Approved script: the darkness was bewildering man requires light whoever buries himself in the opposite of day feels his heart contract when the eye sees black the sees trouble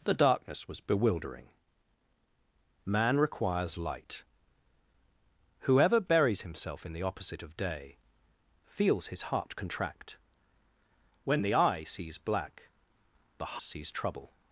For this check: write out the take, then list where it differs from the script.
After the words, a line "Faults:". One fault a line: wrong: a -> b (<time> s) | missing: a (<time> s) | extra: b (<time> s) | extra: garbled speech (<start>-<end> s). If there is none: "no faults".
the darkness was bewildering man requires light whoever buries himself in the opposite of day feels his heart contract when the eye sees black the sees trouble
Faults:
no faults